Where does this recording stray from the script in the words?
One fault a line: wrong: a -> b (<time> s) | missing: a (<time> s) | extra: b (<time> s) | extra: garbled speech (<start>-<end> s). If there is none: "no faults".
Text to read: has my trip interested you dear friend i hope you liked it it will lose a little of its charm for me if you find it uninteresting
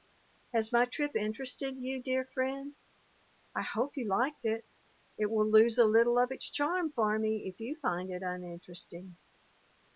no faults